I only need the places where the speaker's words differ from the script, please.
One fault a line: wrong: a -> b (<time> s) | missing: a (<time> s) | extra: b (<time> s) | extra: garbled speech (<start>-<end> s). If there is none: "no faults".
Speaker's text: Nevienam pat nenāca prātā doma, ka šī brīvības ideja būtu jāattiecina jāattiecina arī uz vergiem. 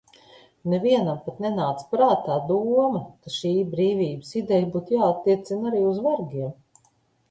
missing: jāattiecina (5.8 s)